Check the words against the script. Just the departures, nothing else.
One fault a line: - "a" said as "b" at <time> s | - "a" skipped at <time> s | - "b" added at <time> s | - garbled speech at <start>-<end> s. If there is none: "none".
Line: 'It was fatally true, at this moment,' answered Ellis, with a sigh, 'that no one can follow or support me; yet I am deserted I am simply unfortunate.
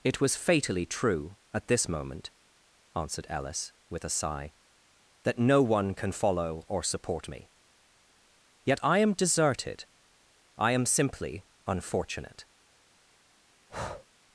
none